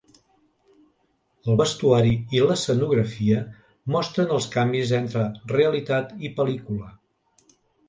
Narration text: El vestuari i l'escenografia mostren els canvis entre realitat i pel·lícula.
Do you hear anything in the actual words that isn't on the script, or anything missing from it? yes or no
no